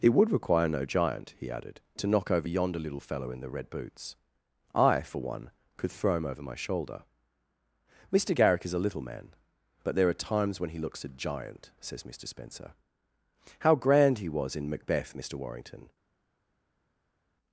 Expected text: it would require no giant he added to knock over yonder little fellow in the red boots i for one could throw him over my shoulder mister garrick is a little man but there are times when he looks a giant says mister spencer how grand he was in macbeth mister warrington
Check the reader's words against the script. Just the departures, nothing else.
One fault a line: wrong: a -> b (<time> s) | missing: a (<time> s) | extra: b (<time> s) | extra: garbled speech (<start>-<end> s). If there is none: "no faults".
no faults